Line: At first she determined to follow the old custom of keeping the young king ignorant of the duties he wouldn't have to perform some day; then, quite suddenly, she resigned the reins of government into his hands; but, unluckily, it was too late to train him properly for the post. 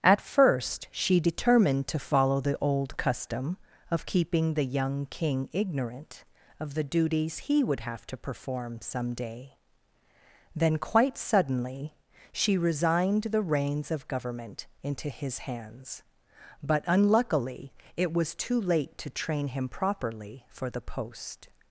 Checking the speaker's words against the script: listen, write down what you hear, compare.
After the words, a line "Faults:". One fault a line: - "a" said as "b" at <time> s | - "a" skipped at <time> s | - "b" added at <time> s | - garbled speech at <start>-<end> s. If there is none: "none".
At first she determined to follow the old custom of keeping the young king ignorant of the duties he would have to perform some day; then, quite suddenly, she resigned the reins of government into his hands; but, unluckily, it was too late to train him properly for the post.
Faults:
- "wouldn't" said as "would" at 7.6 s